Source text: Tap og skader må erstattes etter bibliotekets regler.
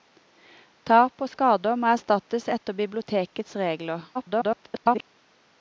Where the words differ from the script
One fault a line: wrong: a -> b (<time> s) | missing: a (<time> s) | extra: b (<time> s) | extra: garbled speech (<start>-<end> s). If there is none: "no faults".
extra: garbled speech (4.1-5.0 s)